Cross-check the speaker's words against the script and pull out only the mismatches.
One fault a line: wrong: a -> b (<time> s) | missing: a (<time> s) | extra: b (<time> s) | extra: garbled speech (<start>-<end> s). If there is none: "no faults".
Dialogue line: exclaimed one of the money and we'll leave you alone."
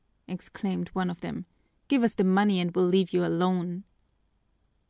extra: them Give us (1.2 s)